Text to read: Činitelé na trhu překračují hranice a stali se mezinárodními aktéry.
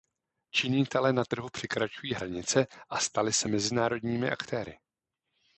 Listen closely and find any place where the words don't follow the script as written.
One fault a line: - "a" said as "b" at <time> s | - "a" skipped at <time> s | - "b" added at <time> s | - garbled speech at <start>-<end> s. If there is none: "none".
none